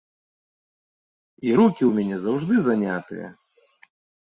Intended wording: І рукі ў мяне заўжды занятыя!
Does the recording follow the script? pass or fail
pass